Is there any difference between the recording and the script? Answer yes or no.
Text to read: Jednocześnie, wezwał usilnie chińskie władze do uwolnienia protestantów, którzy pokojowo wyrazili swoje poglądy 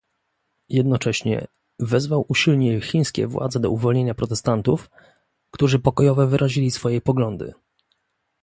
no